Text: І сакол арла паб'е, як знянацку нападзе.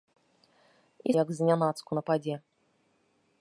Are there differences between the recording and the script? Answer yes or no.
yes